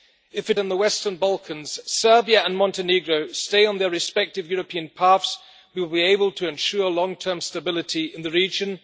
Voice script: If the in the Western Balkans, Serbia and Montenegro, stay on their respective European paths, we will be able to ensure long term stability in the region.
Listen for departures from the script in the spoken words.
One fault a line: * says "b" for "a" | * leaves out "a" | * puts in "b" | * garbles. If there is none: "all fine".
all fine